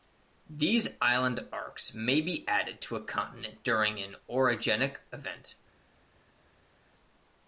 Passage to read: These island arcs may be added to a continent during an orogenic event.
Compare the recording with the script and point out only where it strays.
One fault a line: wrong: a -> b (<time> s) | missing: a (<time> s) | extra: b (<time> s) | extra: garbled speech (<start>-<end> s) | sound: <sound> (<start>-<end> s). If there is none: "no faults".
no faults